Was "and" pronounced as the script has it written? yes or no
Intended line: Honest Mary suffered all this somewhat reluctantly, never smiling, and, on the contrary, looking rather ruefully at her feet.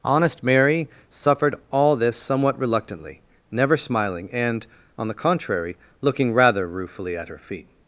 yes